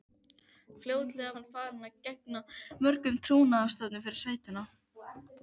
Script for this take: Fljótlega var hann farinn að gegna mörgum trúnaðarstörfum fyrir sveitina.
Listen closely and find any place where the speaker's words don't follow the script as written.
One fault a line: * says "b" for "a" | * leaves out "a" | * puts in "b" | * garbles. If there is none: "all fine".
* leaves out "var"